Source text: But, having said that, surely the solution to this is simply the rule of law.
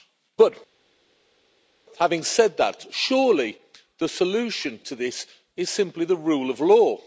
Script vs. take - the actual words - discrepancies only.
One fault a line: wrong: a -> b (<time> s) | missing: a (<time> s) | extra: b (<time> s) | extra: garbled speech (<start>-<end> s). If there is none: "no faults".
no faults